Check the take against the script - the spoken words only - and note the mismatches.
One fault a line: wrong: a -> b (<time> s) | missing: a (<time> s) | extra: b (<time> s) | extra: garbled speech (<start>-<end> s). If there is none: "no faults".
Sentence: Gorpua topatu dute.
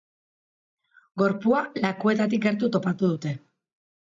extra: lakuetatik gertu (1.9 s)